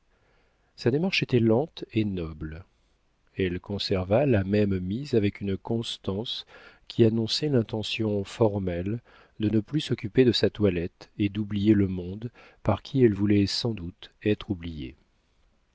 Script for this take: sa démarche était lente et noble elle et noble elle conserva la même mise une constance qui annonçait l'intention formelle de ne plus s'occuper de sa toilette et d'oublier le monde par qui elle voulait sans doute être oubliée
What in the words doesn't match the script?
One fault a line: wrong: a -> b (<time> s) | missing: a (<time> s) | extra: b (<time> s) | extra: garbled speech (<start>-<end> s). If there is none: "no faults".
missing: et noble elle (3.6 s)
extra: avec (5.1 s)